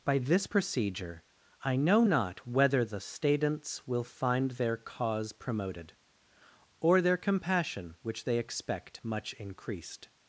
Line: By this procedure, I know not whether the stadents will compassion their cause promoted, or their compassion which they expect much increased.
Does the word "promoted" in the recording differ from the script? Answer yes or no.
no